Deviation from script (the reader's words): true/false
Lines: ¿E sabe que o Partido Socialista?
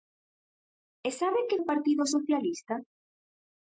false